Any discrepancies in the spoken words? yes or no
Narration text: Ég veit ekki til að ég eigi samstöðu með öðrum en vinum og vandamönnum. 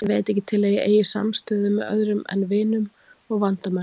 no